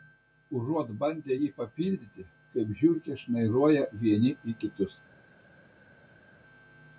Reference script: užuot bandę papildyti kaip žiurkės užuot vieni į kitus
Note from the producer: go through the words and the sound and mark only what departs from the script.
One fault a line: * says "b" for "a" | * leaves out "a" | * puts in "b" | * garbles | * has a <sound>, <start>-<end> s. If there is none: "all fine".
* puts in "jį"
* says "šnairuoja" for "užuot"